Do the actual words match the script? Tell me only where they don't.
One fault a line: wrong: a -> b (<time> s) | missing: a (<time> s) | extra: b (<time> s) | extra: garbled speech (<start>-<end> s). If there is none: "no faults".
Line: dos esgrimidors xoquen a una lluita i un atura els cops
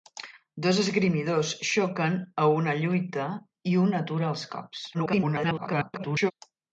extra: garbled speech (4.9-6.3 s)